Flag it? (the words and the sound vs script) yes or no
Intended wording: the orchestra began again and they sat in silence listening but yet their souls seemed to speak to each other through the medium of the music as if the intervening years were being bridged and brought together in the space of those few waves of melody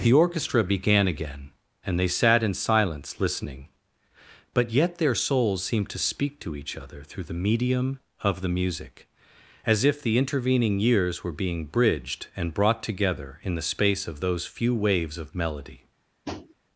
yes